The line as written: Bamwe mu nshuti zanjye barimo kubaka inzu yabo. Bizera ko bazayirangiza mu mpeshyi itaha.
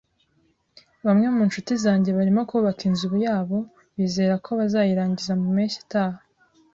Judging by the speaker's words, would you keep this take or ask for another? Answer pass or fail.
pass